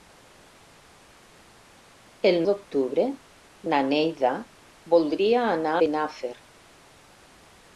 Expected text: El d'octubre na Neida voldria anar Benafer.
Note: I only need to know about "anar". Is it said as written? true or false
true